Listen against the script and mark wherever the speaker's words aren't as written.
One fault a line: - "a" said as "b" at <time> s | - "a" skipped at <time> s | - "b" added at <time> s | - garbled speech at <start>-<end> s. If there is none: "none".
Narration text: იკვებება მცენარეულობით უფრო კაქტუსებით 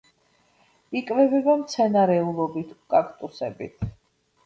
- "უფრო" skipped at 2.7 s